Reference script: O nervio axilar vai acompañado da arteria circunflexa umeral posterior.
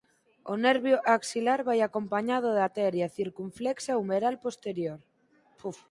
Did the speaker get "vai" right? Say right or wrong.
right